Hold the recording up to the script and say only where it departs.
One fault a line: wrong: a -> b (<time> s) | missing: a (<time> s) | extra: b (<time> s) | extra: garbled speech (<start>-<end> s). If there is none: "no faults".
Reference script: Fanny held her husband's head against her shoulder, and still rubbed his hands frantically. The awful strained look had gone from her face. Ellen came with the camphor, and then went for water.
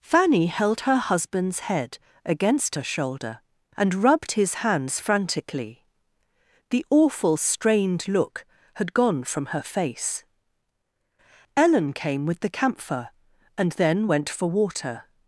missing: still (3.9 s)